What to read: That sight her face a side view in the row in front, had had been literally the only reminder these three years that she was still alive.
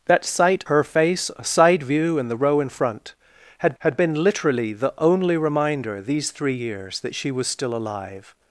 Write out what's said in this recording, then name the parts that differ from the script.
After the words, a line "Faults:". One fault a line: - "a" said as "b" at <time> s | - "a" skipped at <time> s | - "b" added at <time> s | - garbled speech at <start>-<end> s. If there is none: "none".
That sight her face a side view in the row in front, had had been literally the only reminder these three years that she was still alive.
Faults:
none